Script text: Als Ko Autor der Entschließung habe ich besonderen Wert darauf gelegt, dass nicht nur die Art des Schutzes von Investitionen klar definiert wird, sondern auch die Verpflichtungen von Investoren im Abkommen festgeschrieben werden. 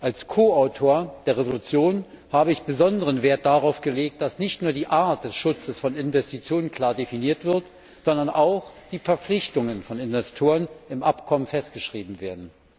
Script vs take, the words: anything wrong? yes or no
no